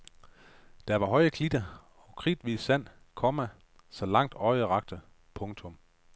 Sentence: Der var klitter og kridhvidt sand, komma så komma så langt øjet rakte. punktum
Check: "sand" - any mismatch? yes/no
no